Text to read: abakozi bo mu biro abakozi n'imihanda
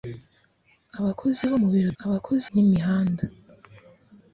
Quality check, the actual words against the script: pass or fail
pass